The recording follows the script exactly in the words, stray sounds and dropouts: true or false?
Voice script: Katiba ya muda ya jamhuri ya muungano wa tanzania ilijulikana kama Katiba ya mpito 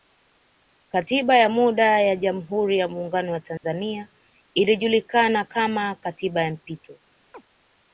false